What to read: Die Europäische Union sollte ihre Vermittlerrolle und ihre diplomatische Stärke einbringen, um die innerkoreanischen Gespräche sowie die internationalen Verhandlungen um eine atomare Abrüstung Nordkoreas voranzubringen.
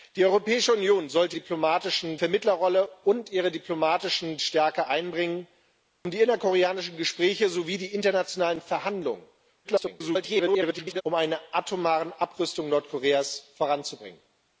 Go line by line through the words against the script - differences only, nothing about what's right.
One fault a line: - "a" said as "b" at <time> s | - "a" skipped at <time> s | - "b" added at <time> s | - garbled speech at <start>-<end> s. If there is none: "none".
- "ihre" said as "diplomatische" at 1.3 s
- garbled speech at 9.6-11.0 s